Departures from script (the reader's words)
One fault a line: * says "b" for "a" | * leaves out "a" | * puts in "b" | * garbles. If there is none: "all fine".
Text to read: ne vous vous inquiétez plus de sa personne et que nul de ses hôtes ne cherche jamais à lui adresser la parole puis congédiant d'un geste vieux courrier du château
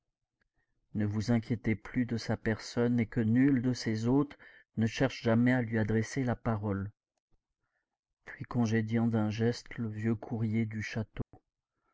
* leaves out "vous"
* puts in "le"